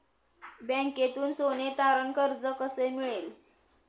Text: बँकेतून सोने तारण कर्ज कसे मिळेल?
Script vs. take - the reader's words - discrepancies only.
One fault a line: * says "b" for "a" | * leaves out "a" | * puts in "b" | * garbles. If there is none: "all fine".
all fine